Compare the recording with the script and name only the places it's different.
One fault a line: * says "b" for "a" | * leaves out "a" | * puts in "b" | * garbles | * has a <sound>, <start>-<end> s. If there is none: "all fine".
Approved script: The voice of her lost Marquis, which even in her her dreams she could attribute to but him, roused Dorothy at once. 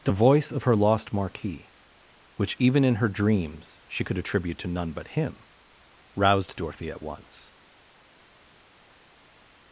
* leaves out "her"
* puts in "none"